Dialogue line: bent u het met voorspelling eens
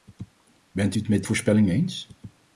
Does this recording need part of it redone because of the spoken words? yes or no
no